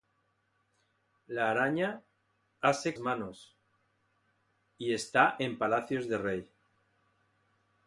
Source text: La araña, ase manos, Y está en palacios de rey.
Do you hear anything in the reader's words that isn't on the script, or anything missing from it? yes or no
no